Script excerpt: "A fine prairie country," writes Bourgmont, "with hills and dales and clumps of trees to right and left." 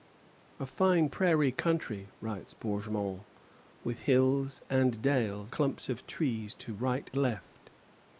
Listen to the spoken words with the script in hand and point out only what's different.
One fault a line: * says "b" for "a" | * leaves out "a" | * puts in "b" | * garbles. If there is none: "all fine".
* leaves out "and"
* leaves out "and"